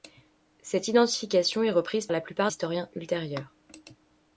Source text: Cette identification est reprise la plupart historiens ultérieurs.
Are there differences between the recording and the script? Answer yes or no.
no